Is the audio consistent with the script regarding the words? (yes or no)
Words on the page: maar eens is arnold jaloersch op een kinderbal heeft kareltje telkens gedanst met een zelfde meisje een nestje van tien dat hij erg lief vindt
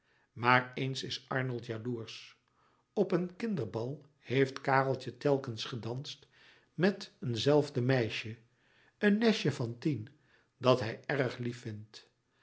yes